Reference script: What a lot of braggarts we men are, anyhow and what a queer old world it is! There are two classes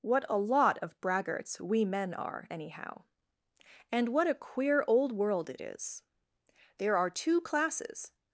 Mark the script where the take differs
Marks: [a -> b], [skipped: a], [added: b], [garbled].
What a lot of braggarts we men are, anyhow and what a queer old world it is! There are two classes